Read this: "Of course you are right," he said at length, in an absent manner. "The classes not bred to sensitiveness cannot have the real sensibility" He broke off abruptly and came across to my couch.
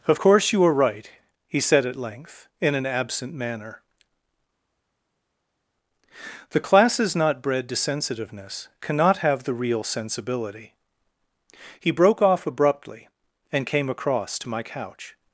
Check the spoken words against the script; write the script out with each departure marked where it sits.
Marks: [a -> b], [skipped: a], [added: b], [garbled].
"Of course you are right," he said at length, in an absent manner. "The classes not bred to sensitiveness cannot have the real sensibility" He broke off abruptly and came across to my couch.